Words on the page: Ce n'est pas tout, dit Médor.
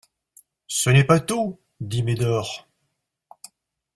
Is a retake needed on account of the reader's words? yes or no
no